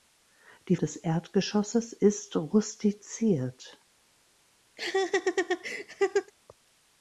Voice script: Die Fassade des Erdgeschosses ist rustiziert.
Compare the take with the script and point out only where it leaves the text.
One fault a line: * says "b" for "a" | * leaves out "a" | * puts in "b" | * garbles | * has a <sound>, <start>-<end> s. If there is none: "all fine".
* leaves out "Fassade"
* has a laugh, 4.8-6.3 s